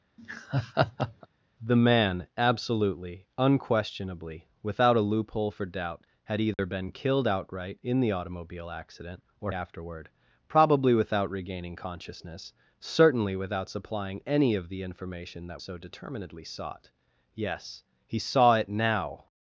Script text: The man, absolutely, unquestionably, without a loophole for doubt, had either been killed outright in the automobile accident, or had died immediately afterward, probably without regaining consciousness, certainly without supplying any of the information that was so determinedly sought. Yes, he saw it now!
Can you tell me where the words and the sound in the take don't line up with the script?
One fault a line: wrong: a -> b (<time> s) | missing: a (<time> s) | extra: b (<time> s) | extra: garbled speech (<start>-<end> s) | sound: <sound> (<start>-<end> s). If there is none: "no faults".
sound: laugh (0.2-1.3 s)
sound: dropout (6.5-6.6 s)
missing: had died immediately (9.5 s)
missing: was (15.6 s)